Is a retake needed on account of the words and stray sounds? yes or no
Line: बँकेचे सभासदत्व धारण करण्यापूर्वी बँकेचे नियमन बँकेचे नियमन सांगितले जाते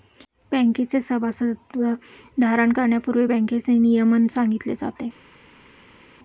yes